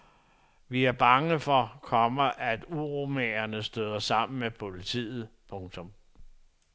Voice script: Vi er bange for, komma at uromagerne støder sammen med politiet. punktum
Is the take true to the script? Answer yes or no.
yes